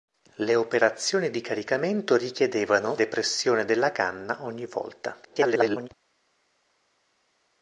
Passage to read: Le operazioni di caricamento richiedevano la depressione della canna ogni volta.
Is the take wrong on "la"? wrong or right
wrong